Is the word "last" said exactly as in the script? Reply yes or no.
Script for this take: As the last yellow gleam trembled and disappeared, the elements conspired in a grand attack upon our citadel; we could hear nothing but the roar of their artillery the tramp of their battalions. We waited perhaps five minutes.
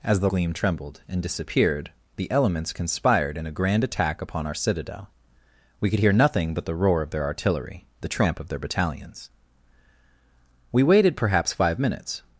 no